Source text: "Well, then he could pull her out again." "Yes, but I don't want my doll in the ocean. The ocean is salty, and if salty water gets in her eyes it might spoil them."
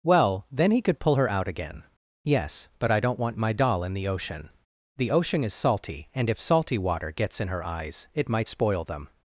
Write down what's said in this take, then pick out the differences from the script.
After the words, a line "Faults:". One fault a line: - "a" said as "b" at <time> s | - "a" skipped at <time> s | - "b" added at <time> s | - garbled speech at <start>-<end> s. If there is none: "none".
"Well, then he could pull her out again." "Yes, but I don't want my doll in the ocean. The ocean is salty, and if salty water gets in her eyes it might spoil them."
Faults:
none